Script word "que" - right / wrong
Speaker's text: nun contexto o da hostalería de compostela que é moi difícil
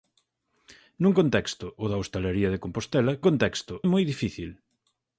wrong